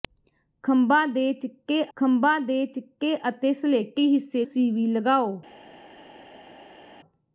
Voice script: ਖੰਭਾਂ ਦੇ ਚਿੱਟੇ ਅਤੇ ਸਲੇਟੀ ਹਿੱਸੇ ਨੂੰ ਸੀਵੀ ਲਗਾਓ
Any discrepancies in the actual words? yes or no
yes